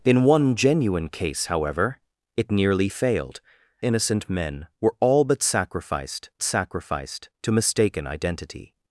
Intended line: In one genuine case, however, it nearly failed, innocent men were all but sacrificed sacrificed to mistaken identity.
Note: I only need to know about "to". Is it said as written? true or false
true